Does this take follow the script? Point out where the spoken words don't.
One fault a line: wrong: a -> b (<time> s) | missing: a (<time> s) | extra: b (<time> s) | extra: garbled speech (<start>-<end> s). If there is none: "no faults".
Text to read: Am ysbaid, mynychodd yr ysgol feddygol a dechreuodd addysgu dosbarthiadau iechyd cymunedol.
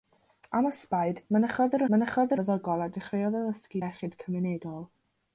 wrong: ysgol -> mynychodd (1.9 s)
missing: dosbarthiadau (3.8 s)